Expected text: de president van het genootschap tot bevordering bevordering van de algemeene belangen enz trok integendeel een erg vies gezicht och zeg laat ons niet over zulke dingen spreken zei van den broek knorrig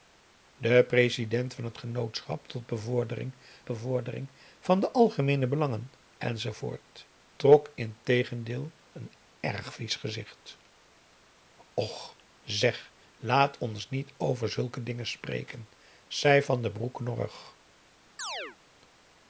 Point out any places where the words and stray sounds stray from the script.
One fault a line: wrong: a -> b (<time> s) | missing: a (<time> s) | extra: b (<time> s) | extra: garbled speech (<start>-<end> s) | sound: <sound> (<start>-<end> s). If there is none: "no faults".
sound: chirp (18.2-18.6 s)